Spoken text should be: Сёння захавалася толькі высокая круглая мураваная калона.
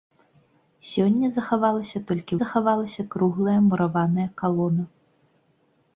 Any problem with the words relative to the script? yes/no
yes